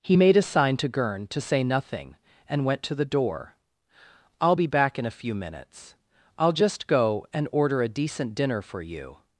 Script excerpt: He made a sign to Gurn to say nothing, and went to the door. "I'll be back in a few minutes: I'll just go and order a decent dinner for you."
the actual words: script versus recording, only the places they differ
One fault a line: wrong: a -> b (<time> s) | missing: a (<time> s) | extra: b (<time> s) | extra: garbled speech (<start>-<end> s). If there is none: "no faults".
no faults